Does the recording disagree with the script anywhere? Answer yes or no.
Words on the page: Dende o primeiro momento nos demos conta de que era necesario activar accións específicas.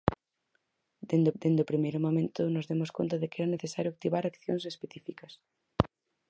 yes